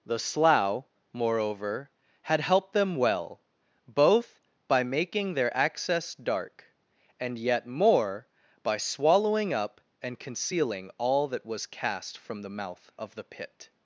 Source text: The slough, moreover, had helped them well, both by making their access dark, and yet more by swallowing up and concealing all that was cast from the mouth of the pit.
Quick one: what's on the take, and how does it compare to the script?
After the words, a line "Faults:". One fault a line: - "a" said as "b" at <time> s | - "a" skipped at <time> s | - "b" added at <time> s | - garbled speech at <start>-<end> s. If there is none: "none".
The slough, moreover, had helped them well, both by making their access dark, and yet more by swallowing up and concealing all that was cast from the mouth of the pit.
Faults:
none